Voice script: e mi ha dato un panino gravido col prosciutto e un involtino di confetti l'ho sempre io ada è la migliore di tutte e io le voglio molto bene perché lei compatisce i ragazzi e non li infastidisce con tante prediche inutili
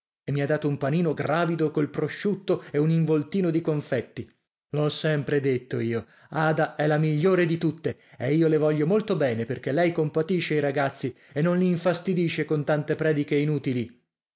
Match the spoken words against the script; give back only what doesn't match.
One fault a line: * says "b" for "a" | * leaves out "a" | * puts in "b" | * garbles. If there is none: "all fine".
* puts in "detto"